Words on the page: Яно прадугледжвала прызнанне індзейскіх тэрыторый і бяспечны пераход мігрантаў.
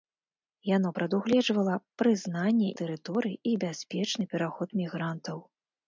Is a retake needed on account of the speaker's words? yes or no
yes